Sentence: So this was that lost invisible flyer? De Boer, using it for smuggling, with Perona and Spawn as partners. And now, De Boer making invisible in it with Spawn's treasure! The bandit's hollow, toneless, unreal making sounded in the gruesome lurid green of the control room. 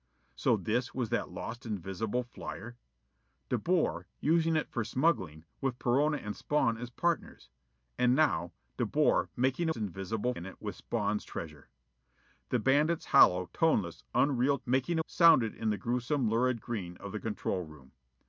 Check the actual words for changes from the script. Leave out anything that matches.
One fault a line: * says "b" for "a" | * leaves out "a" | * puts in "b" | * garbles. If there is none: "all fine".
all fine